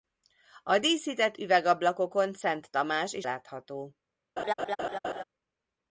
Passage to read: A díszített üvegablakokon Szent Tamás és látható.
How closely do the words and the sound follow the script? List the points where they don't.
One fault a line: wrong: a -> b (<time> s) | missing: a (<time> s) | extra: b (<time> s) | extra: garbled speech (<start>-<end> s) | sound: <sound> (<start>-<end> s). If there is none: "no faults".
sound: laugh (4.4-5.2 s)